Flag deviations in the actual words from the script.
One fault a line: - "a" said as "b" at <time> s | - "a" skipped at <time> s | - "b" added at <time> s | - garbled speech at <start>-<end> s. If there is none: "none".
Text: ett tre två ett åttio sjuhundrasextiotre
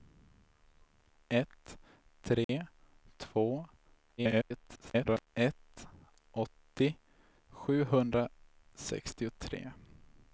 - garbled speech at 4.2-5.3 s